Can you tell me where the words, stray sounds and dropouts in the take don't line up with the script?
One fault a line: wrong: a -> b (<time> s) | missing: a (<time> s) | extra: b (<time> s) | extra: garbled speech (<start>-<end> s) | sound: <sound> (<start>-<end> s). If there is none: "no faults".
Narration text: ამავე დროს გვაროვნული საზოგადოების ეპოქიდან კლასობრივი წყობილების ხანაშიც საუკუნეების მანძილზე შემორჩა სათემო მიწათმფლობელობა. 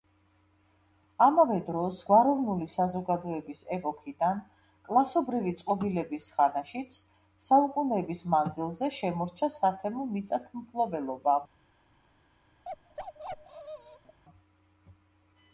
sound: bark (12.6-14.2 s)